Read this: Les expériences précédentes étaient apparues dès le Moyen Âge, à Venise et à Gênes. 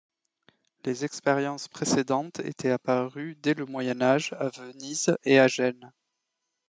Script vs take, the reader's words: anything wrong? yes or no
no